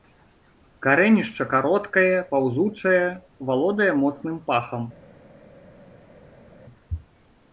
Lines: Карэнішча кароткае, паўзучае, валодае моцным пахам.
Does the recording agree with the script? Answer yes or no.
yes